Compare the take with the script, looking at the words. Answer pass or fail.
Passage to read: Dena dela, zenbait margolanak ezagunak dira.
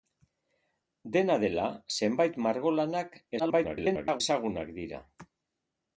fail